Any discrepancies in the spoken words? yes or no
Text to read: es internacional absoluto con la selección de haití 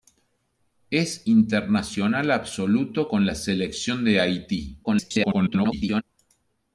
yes